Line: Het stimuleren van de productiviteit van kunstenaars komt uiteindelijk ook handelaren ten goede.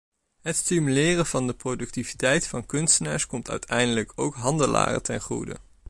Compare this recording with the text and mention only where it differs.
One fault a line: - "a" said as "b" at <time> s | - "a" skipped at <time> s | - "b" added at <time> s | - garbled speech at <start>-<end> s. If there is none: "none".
none